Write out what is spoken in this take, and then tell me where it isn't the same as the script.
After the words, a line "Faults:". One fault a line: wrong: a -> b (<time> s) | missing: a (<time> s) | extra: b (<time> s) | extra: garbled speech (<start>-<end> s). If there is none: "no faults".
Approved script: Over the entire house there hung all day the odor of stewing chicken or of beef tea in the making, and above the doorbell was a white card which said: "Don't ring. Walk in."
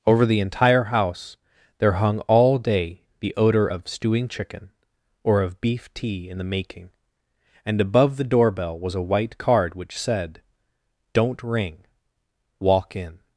Over the entire house there hung all day the odor of stewing chicken or of beef tea in the making, and above the doorbell was a white card which said: "Don't ring. Walk in."
Faults:
no faults